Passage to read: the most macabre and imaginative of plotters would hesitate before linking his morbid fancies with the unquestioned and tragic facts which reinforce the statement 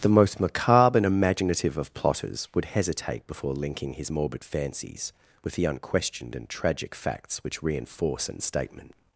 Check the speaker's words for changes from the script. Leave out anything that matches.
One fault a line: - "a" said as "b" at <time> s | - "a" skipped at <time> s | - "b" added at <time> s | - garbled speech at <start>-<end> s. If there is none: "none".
- "the" said as "an" at 8.3 s